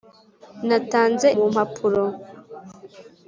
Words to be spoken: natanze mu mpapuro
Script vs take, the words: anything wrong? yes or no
no